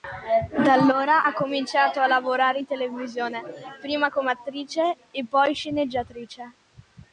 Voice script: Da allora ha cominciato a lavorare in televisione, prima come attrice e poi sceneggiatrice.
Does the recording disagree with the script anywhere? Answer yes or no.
no